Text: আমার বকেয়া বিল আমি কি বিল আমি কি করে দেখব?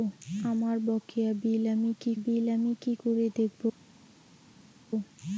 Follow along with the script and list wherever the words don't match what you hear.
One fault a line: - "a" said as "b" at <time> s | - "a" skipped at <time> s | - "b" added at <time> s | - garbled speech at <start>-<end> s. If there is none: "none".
none